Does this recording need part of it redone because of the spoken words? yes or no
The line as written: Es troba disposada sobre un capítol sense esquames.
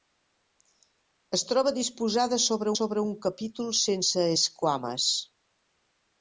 yes